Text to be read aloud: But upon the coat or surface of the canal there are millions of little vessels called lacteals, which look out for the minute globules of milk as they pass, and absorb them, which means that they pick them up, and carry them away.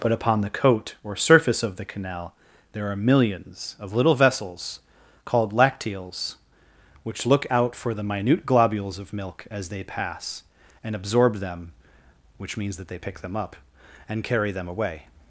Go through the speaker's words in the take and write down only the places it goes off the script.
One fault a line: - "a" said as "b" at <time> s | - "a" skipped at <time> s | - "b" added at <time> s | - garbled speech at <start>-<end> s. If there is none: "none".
none